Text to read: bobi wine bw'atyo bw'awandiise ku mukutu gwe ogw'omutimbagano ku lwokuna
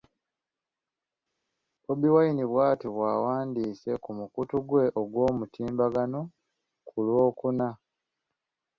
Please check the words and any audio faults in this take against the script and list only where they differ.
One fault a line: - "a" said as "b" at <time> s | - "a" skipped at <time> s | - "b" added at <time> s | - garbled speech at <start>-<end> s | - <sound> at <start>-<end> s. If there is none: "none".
none